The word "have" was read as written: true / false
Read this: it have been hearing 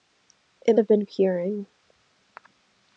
true